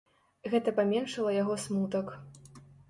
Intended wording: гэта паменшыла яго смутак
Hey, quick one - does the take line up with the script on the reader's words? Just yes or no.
yes